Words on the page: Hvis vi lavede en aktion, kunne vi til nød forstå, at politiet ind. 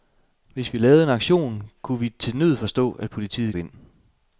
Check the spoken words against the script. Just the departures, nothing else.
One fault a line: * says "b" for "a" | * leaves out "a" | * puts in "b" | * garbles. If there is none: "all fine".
all fine